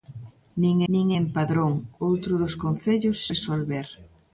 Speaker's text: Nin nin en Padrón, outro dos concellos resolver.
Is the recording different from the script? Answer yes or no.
no